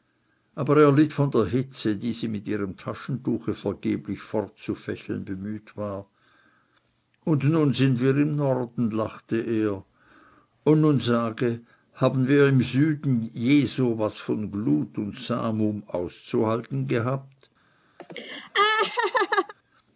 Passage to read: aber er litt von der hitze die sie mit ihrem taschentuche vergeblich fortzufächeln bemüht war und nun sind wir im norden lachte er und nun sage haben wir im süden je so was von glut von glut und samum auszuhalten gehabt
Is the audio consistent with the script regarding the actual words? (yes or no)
no